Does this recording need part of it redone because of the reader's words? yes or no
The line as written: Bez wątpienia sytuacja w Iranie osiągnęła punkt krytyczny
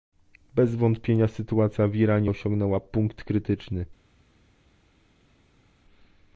no